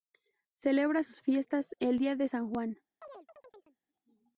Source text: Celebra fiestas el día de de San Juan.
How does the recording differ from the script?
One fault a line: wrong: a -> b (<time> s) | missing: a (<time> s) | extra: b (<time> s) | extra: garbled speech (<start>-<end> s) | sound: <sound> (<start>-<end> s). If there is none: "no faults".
extra: sus (1.0 s)
missing: de (2.3 s)
sound: chirp (3.0-3.8 s)